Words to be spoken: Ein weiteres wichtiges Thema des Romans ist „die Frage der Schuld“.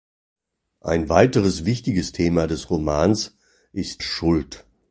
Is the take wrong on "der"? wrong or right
wrong